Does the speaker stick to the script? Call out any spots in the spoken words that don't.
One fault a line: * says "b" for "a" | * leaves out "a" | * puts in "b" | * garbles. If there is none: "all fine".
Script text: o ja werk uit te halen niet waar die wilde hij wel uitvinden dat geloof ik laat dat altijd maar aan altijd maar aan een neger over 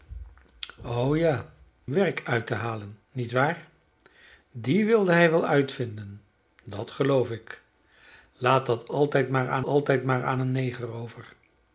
all fine